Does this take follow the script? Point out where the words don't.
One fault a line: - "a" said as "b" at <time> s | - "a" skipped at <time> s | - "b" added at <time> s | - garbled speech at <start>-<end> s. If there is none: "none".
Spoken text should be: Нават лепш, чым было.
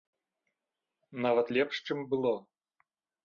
none